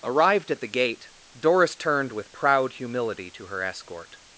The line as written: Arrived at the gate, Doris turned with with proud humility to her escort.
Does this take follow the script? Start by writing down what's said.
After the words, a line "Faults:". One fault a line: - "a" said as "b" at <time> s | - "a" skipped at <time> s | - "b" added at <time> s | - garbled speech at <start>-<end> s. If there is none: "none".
Arrived at the gate, Doris turned with proud humility to her escort.
Faults:
- "with" skipped at 2.3 s